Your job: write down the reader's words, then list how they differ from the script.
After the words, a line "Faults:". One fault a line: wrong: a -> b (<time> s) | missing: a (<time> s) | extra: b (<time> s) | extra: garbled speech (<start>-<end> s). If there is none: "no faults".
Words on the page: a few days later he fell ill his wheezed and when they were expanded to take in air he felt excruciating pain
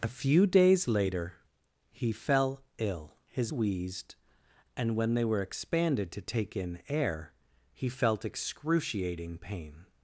a few days later he fell ill his wheezed and when they were expanded to take in air he felt excruciating pain
Faults:
no faults